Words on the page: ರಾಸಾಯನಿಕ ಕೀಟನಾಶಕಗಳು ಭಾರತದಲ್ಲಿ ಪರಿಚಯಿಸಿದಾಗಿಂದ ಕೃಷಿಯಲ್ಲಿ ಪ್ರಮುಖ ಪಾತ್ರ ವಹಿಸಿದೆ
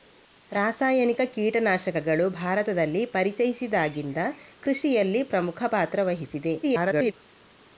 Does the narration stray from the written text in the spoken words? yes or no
yes